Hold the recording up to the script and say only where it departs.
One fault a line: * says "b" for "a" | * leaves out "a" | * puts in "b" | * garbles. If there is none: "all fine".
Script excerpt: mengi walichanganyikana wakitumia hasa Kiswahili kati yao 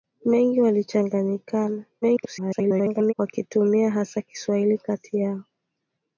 * garbles